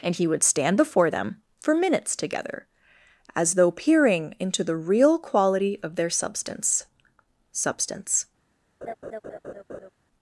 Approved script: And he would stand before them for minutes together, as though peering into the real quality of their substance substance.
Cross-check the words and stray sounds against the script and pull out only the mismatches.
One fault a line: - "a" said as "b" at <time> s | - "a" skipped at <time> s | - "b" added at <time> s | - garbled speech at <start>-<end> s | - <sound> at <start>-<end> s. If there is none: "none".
- laugh at 8.8-9.9 s